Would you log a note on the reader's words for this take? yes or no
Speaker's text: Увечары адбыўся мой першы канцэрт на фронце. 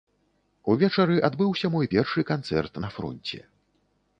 no